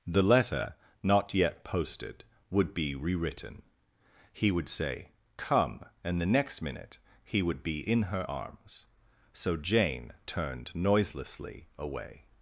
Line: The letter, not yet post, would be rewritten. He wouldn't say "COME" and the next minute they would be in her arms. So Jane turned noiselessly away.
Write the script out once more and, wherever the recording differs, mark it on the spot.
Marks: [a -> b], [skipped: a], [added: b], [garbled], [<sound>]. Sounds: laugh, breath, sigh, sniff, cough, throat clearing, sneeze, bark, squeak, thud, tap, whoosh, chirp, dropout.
The letter, not yet [post, -> posted] would be rewritten. He [wouldn't -> would] say "COME" and the next minute [they -> he] would be in her arms. So Jane turned noiselessly away.